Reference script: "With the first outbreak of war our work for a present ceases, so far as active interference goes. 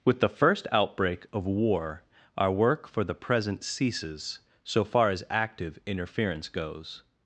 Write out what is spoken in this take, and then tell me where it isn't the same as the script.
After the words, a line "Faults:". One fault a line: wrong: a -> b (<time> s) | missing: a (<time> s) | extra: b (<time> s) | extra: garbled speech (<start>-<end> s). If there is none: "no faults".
"With the first outbreak of war our work for the present ceases, so far as active interference goes.
Faults:
wrong: a -> the (3.0 s)